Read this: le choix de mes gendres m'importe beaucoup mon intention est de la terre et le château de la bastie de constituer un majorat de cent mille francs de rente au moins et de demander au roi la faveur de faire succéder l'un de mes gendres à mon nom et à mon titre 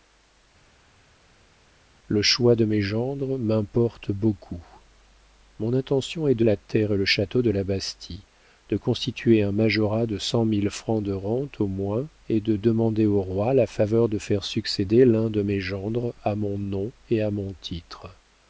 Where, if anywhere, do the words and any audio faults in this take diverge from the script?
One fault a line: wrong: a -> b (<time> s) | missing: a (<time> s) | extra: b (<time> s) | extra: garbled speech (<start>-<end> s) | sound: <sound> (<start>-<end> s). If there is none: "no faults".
no faults